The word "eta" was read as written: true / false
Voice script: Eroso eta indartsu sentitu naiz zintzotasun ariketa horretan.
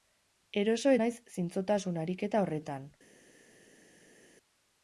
false